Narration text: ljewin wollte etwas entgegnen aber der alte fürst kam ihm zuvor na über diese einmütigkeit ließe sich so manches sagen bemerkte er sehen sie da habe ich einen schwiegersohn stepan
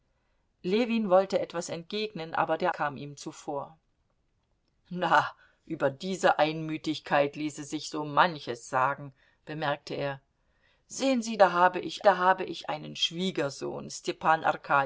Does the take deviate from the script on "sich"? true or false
false